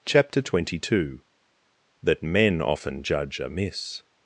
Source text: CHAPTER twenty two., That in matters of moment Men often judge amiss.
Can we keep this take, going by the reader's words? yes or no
no